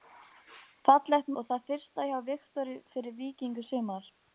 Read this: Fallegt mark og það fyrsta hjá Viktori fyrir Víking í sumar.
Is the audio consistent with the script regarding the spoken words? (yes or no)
no